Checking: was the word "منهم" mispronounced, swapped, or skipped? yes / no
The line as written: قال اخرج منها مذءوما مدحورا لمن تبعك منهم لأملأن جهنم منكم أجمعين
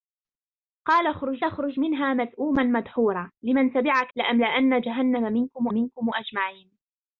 yes